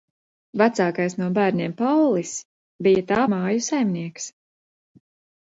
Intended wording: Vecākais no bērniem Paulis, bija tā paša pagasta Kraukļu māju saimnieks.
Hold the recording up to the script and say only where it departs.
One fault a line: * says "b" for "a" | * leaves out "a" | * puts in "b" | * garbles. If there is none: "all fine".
* leaves out "paša pagasta Kraukļu"